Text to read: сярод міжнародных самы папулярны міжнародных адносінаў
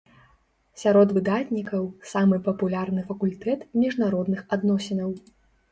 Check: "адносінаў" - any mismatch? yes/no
no